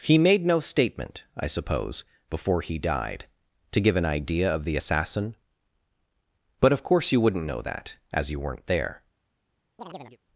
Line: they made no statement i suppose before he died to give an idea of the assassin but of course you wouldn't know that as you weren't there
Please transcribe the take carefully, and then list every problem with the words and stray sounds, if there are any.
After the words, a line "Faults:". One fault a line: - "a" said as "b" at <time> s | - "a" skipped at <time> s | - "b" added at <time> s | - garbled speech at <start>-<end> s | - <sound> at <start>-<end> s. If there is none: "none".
he made no statement i suppose before he died to give an idea of the assassin but of course you wouldn't know that as you weren't there
Faults:
- "they" said as "he" at 0.0 s
- chirp at 9.8-10.2 s